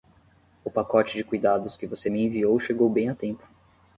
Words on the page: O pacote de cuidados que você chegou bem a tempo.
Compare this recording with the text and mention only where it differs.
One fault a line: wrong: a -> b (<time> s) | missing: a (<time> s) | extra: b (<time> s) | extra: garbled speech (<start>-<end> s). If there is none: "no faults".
extra: me enviou (2.1 s)